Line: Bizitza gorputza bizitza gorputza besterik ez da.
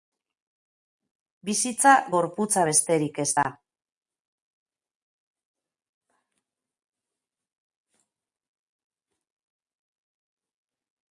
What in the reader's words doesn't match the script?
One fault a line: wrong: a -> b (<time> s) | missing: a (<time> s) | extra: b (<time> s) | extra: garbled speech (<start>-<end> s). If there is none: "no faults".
missing: bizitza gorputza (2.6 s)